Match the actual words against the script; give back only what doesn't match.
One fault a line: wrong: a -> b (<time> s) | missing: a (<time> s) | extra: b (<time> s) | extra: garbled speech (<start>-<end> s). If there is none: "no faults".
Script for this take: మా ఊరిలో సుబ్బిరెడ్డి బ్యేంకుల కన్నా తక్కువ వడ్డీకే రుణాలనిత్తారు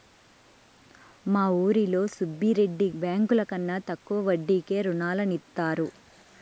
no faults